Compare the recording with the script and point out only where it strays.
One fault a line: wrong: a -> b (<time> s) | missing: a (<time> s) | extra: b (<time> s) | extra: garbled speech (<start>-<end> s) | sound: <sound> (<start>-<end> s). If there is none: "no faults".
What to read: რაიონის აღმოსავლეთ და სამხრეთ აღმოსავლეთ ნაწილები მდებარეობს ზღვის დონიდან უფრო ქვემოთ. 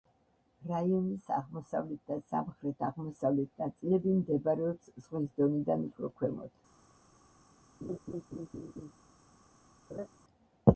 sound: laugh (7.8-8.9 s)
sound: laugh (9.9-10.1 s)